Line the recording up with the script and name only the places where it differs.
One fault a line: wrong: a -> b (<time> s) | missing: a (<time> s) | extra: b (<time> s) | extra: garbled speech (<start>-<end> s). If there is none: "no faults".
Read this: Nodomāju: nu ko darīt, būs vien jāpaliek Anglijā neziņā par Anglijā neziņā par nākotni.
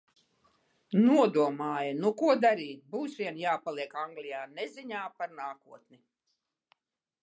missing: Anglijā neziņā par (5.4 s)